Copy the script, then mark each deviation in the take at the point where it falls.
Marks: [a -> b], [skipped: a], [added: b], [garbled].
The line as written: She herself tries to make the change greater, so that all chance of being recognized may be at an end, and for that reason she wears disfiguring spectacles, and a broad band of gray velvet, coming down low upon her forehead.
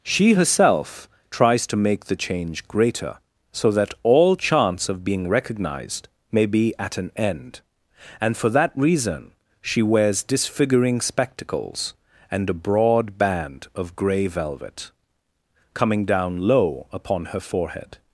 She herself tries to make the change greater, so that all chance of being recognized may be at an end, and for that reason she wears disfiguring spectacles, and a broad band of gray velvet, coming down low upon her forehead.